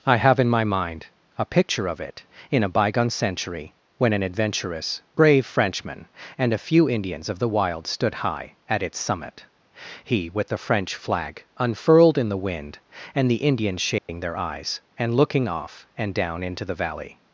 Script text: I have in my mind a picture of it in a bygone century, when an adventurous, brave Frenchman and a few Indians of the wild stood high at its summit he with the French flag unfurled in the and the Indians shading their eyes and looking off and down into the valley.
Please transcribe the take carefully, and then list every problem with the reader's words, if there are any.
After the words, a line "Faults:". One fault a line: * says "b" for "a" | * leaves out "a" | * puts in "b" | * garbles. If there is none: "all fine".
I have in my mind a picture of it in a bygone century, when an adventurous, brave Frenchman and a few Indians of the wild stood high at its summit he with the French flag unfurled in the wind, and the Indians shading their eyes and looking off and down into the valley.
Faults:
* puts in "wind"